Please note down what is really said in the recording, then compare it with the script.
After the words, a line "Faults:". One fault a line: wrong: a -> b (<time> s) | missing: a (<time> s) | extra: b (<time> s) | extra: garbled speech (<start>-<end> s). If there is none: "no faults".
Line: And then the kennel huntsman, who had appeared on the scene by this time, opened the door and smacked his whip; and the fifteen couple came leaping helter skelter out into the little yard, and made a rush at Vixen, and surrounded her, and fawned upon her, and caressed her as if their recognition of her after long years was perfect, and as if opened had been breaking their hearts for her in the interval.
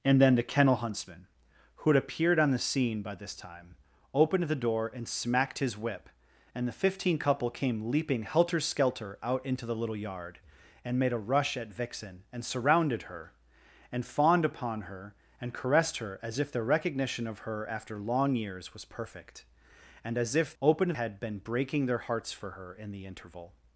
And then the kennel huntsman, who had appeared on the scene by this time, opened the door and smacked his whip; and the fifteen couple came leaping helter skelter out into the little yard, and made a rush at Vixen, and surrounded her, and fawned upon her, and caressed her as if their recognition of her after long years was perfect, and as if opened had been breaking their hearts for her in the interval.
Faults:
no faults